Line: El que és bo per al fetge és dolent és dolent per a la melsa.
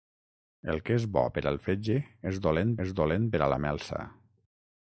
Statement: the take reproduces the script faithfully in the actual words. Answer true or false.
true